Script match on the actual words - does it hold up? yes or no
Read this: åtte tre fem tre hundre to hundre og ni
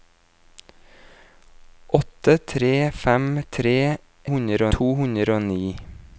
yes